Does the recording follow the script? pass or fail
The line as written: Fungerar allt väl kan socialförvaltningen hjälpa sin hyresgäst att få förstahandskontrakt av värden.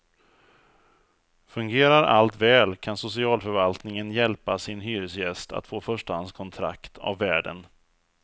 pass